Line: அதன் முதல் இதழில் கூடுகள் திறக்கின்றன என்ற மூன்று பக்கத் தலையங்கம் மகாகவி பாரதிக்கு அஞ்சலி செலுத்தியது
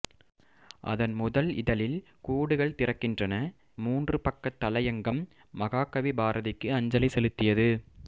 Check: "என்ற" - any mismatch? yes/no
yes